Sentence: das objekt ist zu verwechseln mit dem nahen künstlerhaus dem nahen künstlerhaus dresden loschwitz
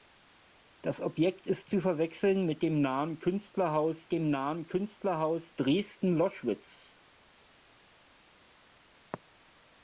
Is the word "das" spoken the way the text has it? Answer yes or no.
yes